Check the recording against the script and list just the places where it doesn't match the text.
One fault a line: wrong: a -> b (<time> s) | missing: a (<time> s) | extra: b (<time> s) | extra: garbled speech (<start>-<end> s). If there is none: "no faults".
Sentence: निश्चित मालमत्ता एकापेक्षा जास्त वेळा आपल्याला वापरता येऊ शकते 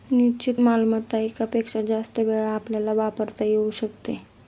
no faults